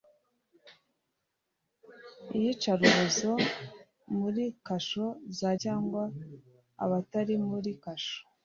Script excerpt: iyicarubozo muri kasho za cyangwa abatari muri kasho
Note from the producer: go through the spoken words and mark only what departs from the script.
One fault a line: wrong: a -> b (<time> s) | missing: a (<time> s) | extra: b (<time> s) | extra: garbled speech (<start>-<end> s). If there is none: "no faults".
no faults